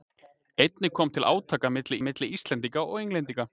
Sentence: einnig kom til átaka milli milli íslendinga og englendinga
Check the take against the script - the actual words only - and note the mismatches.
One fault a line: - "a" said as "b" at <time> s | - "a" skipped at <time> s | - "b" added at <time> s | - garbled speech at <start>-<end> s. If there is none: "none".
none